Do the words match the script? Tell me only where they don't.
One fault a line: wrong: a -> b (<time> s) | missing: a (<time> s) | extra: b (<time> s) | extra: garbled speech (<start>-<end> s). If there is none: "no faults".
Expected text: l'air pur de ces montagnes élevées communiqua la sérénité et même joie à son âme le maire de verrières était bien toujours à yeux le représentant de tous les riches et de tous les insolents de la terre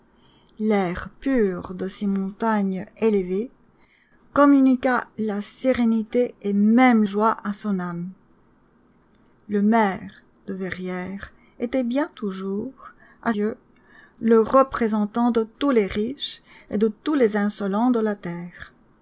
no faults